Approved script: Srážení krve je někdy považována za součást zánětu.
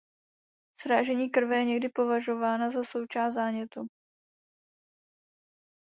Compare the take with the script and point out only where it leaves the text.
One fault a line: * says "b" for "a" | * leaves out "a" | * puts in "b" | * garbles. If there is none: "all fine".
all fine